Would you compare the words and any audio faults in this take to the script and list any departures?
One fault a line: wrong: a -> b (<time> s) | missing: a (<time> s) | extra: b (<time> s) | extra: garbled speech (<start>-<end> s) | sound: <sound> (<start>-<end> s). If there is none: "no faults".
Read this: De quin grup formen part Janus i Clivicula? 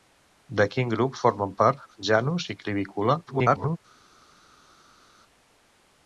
extra: garbled speech (3.3-3.8 s)